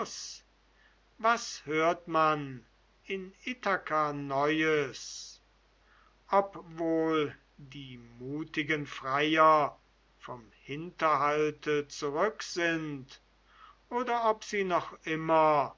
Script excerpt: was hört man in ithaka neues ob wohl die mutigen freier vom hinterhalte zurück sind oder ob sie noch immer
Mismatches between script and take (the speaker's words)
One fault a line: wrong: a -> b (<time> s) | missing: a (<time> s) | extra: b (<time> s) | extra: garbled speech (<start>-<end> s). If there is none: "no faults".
no faults